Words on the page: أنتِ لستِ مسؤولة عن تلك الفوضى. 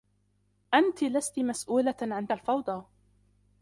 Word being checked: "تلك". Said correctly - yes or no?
no